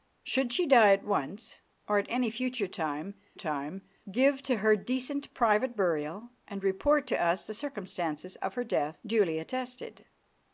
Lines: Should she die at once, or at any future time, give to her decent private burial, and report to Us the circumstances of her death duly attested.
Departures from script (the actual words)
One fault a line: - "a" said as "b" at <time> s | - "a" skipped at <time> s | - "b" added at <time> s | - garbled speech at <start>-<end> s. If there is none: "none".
- "time" added at 3.3 s